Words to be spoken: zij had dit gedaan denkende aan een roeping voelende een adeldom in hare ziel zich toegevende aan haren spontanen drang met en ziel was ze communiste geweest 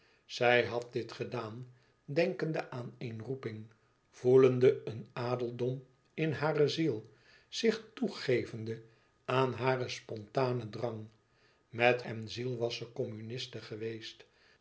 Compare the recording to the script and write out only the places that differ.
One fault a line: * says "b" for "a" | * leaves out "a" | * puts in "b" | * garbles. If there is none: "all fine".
all fine